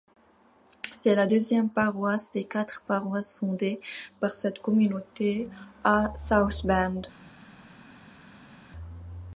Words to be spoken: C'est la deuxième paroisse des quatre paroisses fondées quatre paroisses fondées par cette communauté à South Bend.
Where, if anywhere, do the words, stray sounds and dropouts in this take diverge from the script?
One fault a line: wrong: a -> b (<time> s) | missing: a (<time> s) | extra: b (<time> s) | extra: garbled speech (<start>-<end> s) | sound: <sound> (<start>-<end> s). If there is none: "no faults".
missing: quatre paroisses fondées (3.8 s)